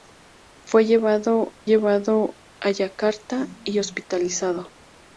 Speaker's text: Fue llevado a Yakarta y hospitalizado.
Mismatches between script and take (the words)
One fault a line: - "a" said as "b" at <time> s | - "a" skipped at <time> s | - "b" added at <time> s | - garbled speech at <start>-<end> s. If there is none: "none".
- "llevado" added at 1.6 s